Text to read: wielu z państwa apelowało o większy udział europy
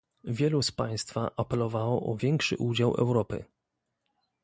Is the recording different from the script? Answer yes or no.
no